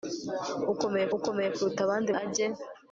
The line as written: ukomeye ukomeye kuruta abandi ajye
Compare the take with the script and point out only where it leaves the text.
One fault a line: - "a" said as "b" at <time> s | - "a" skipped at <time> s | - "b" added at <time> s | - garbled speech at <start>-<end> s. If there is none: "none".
none